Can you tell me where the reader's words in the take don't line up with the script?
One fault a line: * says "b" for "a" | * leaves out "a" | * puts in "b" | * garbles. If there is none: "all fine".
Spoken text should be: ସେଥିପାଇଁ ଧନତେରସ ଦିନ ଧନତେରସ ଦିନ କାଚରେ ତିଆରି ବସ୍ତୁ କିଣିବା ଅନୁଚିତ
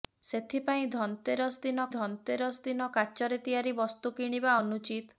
all fine